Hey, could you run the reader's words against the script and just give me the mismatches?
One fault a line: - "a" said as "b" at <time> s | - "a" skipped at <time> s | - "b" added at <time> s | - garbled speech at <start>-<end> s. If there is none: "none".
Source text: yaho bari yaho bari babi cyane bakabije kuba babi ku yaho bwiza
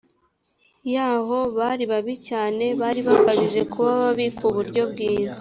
- "yaho bari" skipped at 1.8 s
- "bari" added at 2.8 s
- "yaho" said as "buryo" at 4.5 s